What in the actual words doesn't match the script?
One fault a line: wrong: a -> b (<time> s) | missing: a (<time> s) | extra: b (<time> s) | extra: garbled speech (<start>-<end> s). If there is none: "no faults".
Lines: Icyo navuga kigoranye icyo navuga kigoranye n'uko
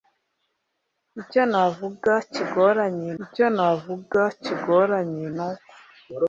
no faults